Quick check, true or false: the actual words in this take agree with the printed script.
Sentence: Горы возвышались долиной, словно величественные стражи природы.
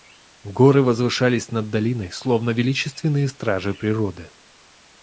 false